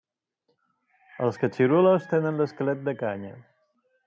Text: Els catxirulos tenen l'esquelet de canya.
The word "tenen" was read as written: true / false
true